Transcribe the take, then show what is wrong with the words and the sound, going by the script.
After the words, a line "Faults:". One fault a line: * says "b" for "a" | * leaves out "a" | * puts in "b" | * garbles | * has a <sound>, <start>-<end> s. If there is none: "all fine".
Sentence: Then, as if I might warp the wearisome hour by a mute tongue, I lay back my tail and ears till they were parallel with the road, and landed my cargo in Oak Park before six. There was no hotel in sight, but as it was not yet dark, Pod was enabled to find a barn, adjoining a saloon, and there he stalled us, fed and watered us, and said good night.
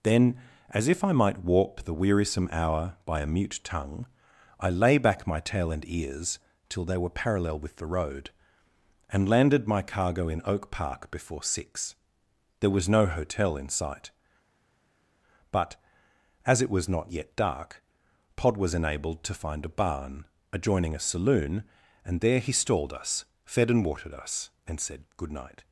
Then, as if I might warp the wearisome hour by a mute tongue, I lay back my tail and ears till they were parallel with the road, and landed my cargo in Oak Park before six. There was no hotel in sight, but as it was not yet dark, Pod was enabled to find a barn, adjoining a saloon, and there he stalled us, fed and watered us, and said good night.
Faults:
all fine